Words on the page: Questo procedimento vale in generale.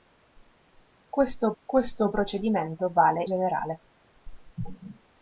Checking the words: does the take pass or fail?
fail